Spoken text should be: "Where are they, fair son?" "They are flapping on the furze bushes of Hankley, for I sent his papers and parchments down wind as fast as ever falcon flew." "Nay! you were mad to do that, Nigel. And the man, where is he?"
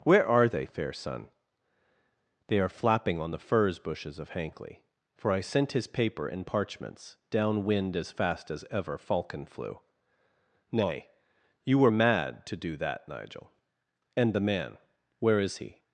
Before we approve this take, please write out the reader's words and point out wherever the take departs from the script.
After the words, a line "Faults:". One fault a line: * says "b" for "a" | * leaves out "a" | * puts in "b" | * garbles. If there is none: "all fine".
"Where are they, fair son?" "They are flapping on the furze bushes of Hankley, for I sent his paper and parchments down wind as fast as ever falcon flew." "Nay! you were mad to do that, Nigel. And the man, where is he?"
Faults:
* says "paper" for "papers"